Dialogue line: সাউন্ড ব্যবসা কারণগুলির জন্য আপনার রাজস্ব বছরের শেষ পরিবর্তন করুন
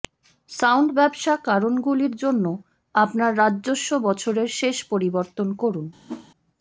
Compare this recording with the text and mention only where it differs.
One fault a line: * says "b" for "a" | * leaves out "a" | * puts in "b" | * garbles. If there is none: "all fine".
all fine